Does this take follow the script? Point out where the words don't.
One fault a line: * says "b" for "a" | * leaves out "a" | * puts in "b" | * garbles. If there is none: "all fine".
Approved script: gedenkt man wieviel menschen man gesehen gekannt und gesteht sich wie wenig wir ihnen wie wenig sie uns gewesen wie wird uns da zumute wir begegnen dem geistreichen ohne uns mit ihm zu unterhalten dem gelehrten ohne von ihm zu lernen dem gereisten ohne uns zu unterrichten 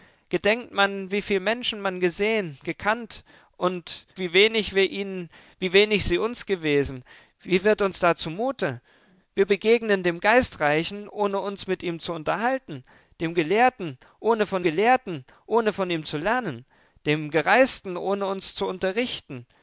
* leaves out "gesteht sich"
* puts in "gelehrten ohne von"